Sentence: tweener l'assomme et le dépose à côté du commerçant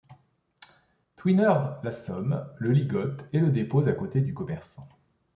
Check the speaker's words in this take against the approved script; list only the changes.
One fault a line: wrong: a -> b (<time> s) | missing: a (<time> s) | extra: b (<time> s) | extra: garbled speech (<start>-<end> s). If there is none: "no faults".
extra: le ligote (2.6 s)